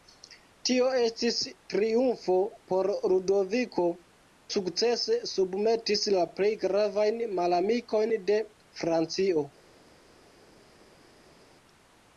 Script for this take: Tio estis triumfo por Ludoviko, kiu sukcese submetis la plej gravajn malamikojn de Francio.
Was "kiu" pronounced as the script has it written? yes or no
no